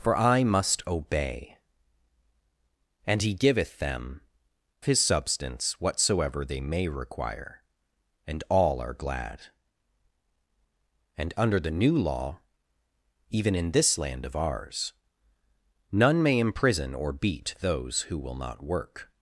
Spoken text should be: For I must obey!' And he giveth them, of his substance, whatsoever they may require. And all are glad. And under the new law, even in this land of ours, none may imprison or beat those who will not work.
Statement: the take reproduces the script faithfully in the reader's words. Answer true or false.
false